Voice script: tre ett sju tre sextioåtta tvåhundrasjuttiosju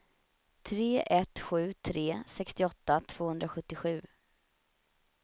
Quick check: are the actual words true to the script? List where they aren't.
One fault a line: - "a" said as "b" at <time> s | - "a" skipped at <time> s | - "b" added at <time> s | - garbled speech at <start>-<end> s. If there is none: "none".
none